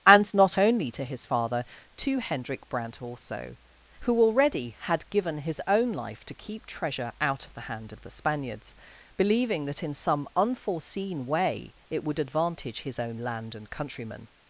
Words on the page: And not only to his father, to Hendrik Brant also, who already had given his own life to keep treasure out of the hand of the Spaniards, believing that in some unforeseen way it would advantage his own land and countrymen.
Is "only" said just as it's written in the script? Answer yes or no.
yes